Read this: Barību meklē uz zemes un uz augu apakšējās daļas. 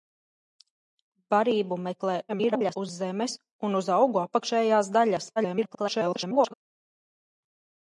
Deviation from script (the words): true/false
true